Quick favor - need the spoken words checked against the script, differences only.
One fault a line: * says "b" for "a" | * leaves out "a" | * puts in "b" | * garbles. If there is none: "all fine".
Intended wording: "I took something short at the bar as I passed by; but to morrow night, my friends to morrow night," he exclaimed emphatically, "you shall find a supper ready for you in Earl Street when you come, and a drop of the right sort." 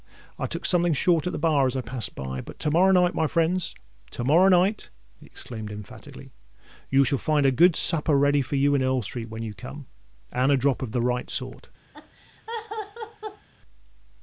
* puts in "good"